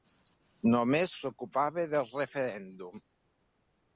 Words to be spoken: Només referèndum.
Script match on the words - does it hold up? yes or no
no